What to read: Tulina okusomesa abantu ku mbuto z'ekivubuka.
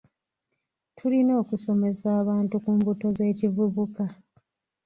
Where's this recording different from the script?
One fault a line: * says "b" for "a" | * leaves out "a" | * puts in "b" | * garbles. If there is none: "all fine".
all fine